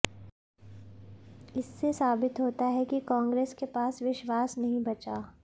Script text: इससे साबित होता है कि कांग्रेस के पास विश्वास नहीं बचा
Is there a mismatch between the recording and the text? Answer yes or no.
no